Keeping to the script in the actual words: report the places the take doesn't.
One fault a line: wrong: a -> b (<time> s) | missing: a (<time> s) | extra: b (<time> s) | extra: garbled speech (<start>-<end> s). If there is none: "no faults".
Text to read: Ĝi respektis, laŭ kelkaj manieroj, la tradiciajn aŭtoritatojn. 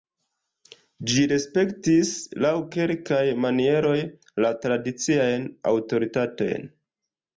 no faults